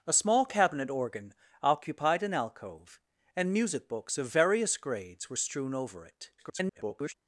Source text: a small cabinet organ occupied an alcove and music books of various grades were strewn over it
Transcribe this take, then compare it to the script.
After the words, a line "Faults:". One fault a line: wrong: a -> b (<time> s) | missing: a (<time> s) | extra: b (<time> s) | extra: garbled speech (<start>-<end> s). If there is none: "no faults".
a small cabinet organ occupied an alcove and music books of various grades were strewn over it [garbled]
Faults:
extra: garbled speech (6.4-7.1 s)